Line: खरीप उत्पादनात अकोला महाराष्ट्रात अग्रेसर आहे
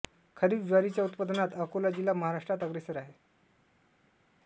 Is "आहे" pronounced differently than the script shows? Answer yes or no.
no